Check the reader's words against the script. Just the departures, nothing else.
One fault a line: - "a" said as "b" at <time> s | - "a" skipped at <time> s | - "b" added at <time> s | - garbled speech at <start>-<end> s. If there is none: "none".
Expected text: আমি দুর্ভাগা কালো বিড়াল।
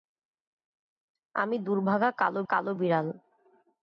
- "কালো" added at 2.4 s